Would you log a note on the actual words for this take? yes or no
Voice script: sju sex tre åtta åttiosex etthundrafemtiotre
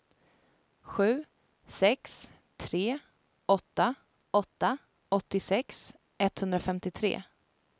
yes